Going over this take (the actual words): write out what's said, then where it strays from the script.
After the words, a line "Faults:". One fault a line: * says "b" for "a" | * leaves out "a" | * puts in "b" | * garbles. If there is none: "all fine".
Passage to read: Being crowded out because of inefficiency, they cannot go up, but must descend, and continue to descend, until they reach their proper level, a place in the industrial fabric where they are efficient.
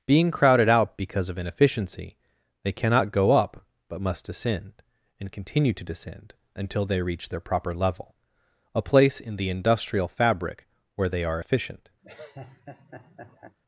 Being crowded out because of inefficiency, they cannot go up, but must descend, and continue to descend, until they reach their proper level, a place in the industrial fabric where they are efficient.
Faults:
all fine